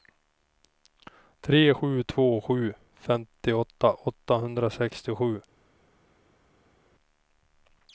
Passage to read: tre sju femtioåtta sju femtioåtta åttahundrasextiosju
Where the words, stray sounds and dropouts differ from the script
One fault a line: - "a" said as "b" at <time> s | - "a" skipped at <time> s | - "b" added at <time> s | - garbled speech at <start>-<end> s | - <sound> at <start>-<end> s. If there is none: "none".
- "femtioåtta" said as "två" at 2.0 s